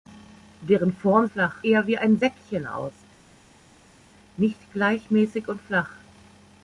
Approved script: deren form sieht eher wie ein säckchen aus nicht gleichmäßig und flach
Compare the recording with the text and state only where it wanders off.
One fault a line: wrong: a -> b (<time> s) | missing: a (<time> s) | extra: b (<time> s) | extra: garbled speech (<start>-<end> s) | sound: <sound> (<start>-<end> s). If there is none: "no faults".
wrong: sieht -> flach (1.2 s)